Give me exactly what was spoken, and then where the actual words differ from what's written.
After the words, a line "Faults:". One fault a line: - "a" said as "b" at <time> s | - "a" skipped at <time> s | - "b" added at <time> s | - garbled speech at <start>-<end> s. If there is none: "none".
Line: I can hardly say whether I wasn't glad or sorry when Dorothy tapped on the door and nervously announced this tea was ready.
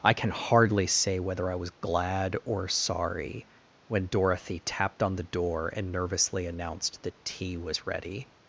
I can hardly say whether I was glad or sorry when Dorothy tapped on the door and nervously announced that tea was ready.
Faults:
- "wasn't" said as "was" at 1.6 s
- "this" said as "that" at 7.0 s